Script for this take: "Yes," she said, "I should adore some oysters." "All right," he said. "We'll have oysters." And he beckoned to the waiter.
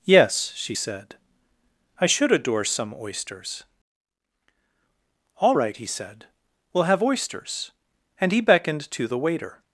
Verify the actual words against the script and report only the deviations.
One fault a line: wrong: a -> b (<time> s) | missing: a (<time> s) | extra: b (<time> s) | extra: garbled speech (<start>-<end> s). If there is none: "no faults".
no faults